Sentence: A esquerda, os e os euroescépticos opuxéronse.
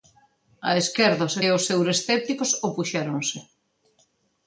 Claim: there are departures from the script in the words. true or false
false